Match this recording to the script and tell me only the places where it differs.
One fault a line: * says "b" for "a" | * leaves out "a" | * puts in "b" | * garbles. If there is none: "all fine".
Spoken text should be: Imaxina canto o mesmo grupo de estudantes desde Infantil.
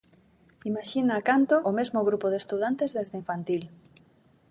all fine